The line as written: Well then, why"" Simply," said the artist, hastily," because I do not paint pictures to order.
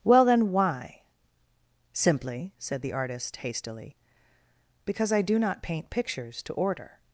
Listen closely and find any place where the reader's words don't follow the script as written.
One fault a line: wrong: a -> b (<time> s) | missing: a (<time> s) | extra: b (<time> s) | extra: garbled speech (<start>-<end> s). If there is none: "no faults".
no faults